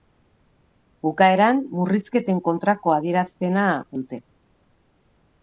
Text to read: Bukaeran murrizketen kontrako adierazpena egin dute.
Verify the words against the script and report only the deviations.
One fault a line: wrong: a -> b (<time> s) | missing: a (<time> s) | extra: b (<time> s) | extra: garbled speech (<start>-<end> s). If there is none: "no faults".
missing: egin (3.7 s)